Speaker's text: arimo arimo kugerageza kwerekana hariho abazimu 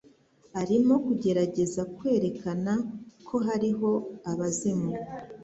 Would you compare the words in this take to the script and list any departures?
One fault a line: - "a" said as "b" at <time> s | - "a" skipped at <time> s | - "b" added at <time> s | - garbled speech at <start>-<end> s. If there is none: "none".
- "arimo" skipped at 0.9 s
- "ko" added at 3.3 s